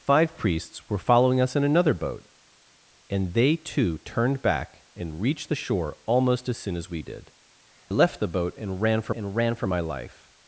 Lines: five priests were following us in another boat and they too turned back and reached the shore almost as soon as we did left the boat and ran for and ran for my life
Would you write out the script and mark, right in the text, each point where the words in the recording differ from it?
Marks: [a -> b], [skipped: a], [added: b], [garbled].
five priests were following us in another boat and they too turned back and reached the shore almost as soon as we did left the boat and ran for and ran for my life